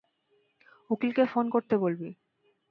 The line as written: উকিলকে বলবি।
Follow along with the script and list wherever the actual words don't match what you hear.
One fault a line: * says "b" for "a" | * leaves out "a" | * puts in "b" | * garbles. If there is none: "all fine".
* puts in "ফোন করতে"